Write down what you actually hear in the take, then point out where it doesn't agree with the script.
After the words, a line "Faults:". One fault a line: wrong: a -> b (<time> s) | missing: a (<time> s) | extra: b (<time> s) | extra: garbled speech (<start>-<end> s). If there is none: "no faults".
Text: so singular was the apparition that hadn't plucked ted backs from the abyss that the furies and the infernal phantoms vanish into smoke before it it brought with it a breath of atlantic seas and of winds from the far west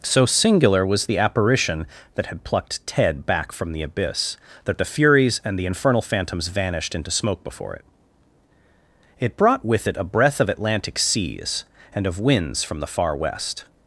so singular was the apparition that had plucked ted back from the abyss that the furies and the infernal phantoms vanished into smoke before it it brought with it a breath of atlantic seas and of winds from the far west
Faults:
wrong: hadn't -> had (2.3 s)
wrong: backs -> back (3.3 s)
wrong: vanish -> vanished (6.5 s)